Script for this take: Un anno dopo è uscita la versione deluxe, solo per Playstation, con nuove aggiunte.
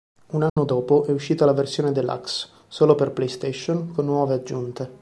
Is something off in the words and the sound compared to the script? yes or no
yes